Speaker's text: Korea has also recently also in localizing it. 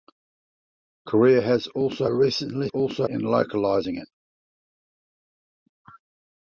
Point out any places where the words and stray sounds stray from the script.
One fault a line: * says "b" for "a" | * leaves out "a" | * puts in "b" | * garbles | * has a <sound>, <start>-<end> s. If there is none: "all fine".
all fine